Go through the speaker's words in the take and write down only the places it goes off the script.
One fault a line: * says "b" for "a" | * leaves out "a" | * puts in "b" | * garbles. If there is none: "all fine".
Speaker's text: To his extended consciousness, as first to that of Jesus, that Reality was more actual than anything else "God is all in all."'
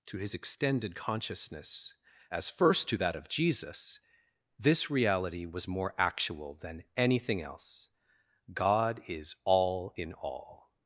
* says "this" for "that"